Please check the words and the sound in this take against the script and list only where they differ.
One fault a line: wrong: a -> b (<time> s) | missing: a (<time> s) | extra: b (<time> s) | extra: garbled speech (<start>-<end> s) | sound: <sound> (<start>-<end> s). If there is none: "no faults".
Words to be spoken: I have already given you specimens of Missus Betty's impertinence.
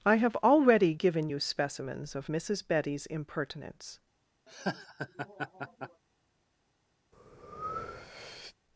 sound: laugh (4.5-6.0 s)
sound: breath (7.1-8.6 s)